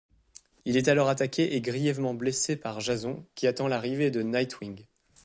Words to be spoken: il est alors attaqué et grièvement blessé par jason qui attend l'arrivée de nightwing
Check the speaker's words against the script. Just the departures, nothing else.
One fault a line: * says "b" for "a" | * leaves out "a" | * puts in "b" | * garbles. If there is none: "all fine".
all fine